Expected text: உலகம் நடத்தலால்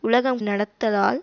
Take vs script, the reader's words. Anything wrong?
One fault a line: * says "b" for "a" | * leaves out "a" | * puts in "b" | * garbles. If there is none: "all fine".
all fine